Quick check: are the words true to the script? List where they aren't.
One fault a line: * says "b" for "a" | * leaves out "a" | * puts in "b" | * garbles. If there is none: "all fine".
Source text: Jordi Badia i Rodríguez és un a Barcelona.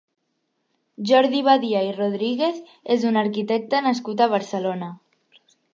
* puts in "arquitecte nascut"